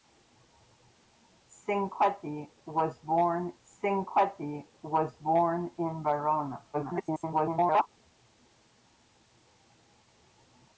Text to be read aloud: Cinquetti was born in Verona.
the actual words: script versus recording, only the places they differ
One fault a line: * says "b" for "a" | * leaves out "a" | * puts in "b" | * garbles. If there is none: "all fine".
* puts in "cinquetti was born"
* garbles